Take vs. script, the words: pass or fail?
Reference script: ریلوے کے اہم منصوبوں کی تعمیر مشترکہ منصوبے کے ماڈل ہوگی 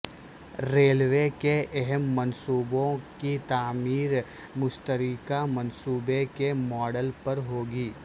fail